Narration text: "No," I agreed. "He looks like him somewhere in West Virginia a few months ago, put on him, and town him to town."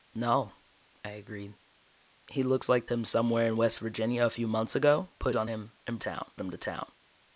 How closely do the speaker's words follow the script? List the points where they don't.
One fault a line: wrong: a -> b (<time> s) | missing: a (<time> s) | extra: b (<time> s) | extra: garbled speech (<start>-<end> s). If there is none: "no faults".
no faults